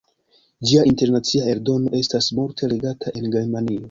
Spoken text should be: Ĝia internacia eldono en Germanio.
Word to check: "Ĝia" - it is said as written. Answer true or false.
true